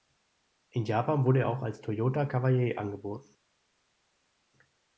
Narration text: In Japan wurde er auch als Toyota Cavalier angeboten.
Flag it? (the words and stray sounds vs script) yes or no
no